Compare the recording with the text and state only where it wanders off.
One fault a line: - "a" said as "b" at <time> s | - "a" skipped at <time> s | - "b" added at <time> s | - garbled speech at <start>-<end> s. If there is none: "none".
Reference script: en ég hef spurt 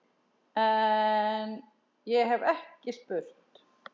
- "ekki" added at 2.5 s